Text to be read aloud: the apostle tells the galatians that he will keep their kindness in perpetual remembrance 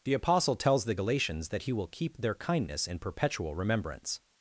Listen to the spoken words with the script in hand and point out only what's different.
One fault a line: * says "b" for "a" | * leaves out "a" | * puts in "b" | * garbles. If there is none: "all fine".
all fine